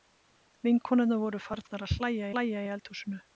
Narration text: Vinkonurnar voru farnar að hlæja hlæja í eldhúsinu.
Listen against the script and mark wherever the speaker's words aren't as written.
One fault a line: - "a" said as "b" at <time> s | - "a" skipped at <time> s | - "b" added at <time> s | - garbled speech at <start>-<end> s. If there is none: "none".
none